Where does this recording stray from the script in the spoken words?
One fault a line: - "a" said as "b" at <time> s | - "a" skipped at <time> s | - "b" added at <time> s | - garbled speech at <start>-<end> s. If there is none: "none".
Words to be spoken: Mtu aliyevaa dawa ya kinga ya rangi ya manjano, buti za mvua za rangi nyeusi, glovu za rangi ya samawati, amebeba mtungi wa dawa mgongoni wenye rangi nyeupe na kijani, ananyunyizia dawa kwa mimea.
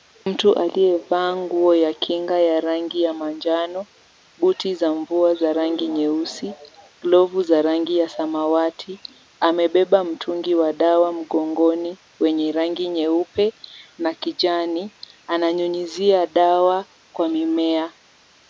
- "dawa" said as "nguo" at 1.4 s